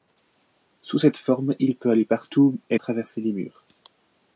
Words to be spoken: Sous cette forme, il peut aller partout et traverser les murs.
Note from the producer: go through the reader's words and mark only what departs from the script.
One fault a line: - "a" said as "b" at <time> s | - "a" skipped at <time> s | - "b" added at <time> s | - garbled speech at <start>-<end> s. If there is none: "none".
none